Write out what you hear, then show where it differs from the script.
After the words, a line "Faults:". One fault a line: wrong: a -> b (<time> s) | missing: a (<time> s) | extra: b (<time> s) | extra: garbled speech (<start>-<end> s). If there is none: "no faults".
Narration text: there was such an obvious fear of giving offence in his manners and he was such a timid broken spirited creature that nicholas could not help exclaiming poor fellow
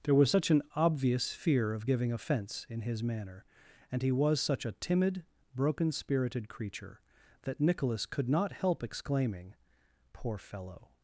there was such an obvious fear of giving offence in his manner and he was such a timid broken spirited creature that nicholas could not help exclaiming poor fellow
Faults:
wrong: manners -> manner (3.0 s)